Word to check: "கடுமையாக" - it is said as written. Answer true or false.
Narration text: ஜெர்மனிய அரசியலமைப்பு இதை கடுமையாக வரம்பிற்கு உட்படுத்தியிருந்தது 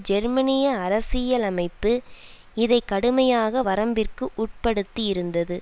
true